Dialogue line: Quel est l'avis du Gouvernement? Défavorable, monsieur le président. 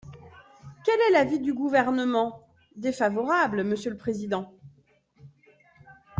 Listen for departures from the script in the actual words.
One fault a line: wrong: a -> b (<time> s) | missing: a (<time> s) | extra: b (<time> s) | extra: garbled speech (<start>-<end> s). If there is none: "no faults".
no faults